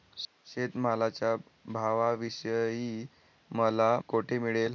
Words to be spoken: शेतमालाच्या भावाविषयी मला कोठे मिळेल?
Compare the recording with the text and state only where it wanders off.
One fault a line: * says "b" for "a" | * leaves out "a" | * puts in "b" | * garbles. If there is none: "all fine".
all fine